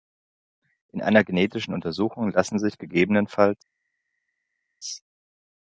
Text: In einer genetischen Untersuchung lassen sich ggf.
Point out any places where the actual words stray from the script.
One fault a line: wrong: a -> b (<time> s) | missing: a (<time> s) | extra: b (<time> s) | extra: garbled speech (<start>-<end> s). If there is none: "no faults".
no faults